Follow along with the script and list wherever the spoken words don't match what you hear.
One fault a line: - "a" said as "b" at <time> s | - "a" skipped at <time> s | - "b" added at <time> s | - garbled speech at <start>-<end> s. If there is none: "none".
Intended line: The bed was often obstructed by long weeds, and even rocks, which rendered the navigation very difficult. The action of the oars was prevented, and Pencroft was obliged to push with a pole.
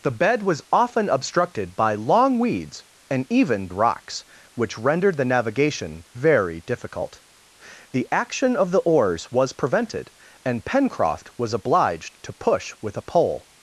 none